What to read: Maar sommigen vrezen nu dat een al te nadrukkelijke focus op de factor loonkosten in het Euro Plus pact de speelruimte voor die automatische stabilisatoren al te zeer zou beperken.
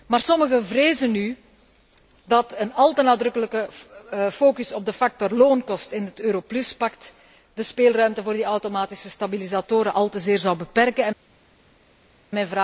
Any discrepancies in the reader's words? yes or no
no